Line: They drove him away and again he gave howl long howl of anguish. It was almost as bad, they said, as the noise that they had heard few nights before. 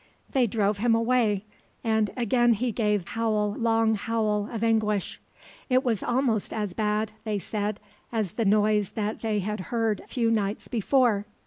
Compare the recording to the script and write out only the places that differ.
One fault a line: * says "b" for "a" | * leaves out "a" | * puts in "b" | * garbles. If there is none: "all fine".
all fine